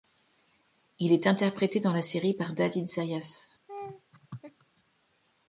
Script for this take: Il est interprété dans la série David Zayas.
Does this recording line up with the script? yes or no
no